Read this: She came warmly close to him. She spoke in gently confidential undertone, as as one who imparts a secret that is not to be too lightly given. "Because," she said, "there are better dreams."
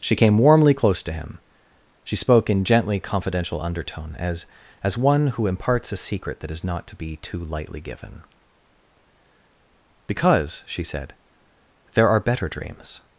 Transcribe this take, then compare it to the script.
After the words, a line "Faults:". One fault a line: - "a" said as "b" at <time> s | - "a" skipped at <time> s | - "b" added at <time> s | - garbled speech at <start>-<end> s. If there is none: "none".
She came warmly close to him. She spoke in gently confidential undertone, as as one who imparts a secret that is not to be too lightly given. "Because," she said, "there are better dreams."
Faults:
none